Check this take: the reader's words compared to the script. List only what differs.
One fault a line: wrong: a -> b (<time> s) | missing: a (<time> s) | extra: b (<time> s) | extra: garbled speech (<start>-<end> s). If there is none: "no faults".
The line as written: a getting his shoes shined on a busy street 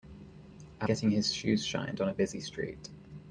no faults